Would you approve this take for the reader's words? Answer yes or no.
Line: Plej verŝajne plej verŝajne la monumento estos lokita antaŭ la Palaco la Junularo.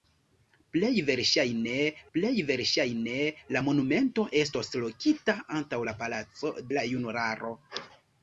yes